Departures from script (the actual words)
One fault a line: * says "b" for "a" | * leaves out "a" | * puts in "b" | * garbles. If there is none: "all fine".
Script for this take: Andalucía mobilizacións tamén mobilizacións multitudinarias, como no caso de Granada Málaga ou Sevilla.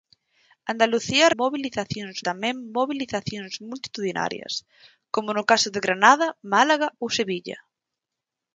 all fine